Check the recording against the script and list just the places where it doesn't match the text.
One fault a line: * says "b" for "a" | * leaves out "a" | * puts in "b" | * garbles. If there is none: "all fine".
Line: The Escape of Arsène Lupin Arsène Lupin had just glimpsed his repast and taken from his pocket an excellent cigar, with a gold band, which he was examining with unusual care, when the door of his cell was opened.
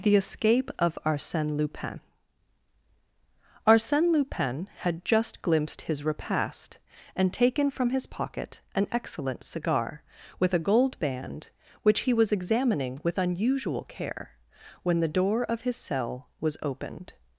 all fine